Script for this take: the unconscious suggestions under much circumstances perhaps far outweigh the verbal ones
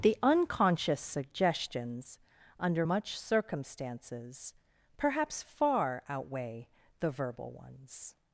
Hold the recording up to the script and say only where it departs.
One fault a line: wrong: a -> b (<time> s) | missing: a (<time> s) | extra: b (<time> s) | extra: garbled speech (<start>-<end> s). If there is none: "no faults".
no faults